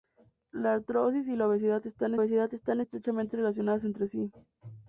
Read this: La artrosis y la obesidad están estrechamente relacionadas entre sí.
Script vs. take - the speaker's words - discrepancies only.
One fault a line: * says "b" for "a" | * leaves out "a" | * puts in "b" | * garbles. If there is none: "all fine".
* puts in "obesidad están"